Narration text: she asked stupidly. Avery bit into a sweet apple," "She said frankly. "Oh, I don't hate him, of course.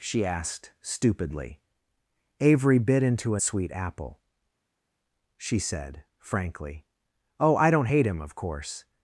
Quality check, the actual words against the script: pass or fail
pass